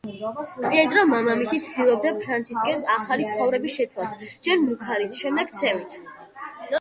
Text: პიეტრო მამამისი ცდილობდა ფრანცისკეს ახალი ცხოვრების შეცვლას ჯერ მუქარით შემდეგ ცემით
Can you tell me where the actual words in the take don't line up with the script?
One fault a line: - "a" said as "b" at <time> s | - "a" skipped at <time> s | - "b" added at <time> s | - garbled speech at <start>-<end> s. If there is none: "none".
none